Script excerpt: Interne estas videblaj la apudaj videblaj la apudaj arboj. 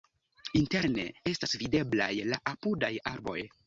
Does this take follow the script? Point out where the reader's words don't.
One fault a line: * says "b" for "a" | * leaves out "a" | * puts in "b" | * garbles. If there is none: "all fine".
* leaves out "videblaj la apudaj"